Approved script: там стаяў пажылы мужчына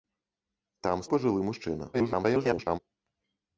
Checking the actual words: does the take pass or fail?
fail